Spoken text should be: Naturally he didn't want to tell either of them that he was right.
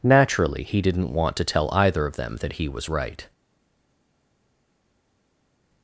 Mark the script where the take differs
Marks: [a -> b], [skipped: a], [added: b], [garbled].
Naturally he didn't want to tell either of them that he was right.